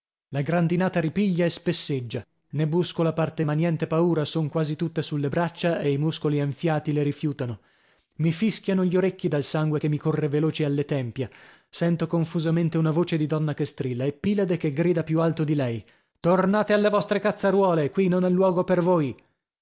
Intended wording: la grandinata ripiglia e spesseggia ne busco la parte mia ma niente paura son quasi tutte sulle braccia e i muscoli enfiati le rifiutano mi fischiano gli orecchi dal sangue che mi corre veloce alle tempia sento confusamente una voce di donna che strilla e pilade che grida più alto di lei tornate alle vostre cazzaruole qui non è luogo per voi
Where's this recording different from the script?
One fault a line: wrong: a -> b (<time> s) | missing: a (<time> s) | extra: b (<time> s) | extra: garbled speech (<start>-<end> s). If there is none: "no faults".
missing: mia (3.4 s)